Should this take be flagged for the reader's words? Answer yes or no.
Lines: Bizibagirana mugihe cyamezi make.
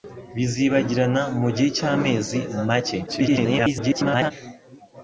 yes